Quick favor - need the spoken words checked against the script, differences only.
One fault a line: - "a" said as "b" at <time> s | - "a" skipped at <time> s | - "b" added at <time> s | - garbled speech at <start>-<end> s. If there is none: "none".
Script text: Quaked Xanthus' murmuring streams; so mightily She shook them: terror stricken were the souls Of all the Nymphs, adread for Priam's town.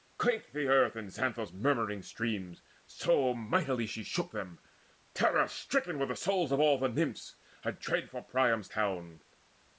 - "the earth And" added at 0.5 s